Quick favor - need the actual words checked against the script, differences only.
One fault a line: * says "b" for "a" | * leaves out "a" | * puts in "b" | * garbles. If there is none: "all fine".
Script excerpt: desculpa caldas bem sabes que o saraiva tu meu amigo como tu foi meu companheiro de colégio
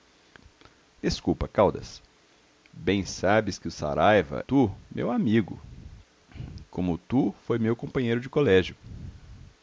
all fine